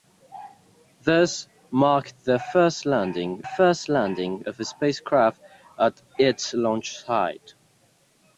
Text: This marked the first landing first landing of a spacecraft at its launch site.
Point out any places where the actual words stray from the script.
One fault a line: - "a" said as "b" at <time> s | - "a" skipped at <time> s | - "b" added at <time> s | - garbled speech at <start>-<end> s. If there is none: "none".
none